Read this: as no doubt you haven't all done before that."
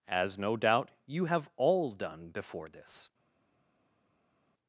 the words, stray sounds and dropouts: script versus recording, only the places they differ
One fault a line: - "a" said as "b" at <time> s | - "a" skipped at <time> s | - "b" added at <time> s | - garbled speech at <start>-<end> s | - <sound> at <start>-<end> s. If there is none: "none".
- "haven't" said as "have" at 1.2 s
- "that" said as "this" at 2.7 s